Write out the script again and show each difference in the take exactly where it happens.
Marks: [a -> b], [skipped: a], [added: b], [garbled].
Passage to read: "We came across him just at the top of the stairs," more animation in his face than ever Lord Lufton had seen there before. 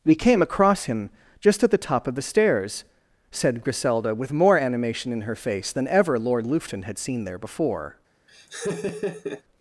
"We came across him just at the top of the stairs," [added: said Griselda with] more animation in [his -> her] face than ever Lord Lufton had seen there before.